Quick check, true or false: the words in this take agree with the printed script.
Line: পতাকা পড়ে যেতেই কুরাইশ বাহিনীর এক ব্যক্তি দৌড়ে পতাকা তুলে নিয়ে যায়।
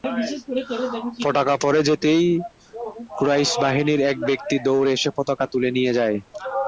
false